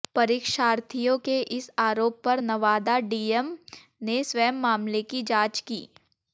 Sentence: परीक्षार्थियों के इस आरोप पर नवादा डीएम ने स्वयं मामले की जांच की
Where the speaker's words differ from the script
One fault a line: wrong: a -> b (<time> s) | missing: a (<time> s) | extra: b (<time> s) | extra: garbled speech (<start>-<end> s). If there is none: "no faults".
no faults